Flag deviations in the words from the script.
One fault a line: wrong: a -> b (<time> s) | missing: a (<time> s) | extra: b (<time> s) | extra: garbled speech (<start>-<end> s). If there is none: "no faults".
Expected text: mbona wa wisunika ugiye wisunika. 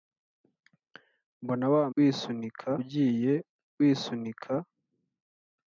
no faults